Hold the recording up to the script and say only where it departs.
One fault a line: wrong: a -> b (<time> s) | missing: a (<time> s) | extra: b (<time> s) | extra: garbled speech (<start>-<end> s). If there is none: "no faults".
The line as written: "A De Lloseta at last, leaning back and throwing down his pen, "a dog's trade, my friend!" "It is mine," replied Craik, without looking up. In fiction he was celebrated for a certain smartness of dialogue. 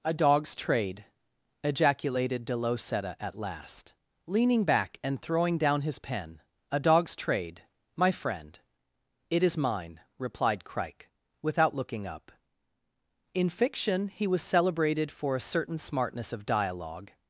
extra: dog's trade ejaculated (0.1 s)